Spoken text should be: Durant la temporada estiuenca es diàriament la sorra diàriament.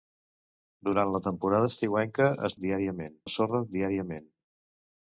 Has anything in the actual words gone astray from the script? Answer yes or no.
no